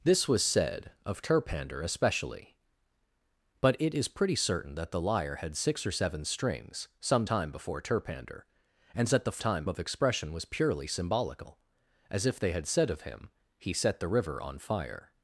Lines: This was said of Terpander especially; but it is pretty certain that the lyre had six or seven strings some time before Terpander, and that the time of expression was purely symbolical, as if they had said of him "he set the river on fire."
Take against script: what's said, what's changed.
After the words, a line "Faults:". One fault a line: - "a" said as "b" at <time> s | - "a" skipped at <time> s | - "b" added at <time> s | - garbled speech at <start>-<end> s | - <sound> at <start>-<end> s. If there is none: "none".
This was said of Terpander especially; but it is pretty certain that the lyre had six or seven strings some time before Terpander, and that the time of expression was purely symbolical, as if they had said of him "he set the river on fire."
Faults:
none